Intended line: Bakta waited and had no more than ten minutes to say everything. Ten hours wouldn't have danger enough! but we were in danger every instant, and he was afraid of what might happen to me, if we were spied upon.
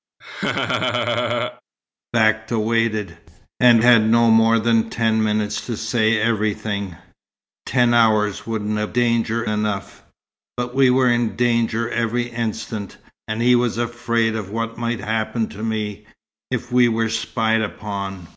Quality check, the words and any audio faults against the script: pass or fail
fail